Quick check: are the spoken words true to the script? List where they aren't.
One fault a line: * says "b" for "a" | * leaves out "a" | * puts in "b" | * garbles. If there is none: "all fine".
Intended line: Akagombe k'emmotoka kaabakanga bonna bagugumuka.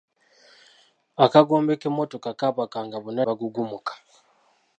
all fine